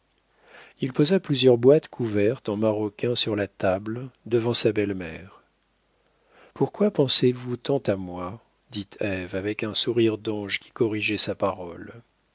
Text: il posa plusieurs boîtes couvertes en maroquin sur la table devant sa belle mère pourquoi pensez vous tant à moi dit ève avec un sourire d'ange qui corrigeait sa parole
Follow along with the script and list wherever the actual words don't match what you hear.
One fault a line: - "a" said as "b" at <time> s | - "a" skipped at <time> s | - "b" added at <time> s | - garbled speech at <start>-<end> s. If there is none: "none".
none